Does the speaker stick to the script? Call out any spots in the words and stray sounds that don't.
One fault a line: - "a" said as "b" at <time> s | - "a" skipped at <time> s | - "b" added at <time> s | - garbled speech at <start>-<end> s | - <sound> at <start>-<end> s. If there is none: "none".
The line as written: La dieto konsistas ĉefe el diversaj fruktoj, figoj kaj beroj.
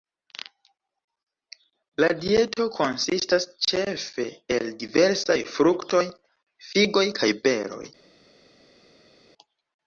none